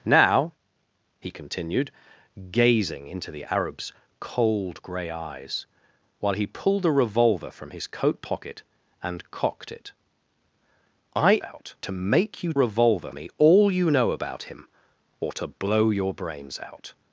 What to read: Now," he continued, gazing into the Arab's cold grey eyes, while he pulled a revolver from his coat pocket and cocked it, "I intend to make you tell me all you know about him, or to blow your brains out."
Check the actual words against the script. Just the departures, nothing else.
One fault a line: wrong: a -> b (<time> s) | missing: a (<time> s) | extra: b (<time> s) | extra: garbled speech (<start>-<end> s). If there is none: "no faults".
wrong: intend -> out (11.4 s)
wrong: tell -> revolver (12.5 s)